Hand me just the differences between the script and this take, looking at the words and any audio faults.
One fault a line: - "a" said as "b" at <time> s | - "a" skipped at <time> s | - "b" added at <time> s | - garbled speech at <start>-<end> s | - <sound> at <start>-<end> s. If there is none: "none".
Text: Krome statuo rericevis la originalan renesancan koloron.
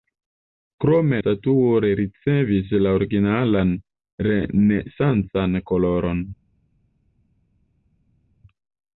none